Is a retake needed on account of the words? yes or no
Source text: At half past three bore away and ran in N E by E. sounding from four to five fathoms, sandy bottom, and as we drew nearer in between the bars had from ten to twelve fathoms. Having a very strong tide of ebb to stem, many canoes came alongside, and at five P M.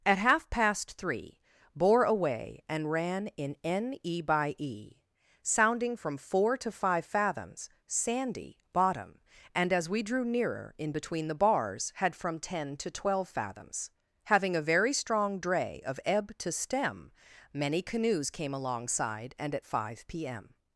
yes